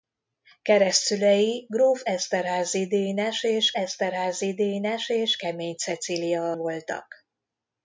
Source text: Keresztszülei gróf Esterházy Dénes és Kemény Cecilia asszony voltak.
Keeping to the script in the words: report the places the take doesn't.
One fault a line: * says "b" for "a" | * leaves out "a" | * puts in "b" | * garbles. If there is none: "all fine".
* puts in "Esterházy Dénes és"
* leaves out "asszony"